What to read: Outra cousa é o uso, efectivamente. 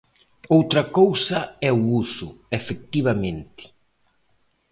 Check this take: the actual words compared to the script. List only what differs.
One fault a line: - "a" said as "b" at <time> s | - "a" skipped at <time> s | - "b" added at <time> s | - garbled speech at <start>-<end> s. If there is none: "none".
none